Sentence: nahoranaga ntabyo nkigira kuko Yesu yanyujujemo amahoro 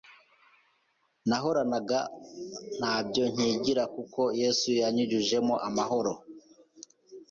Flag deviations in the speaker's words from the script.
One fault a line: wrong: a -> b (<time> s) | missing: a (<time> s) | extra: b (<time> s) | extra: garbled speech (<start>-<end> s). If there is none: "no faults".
no faults